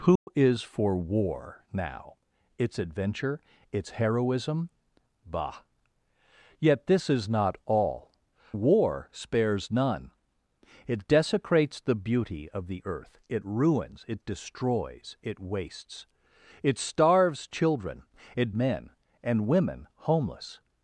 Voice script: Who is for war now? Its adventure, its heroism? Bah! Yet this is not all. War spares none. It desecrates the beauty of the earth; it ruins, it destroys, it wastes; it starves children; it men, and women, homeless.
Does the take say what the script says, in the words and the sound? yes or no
no